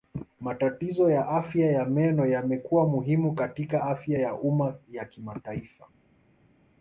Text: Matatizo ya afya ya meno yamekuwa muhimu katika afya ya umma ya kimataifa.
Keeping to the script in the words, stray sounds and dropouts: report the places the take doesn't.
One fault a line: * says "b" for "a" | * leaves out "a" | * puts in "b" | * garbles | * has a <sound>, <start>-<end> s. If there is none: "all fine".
all fine